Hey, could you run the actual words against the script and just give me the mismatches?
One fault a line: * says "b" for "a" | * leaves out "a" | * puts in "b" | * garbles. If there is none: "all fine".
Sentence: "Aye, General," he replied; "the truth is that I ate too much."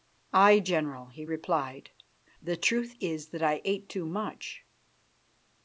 all fine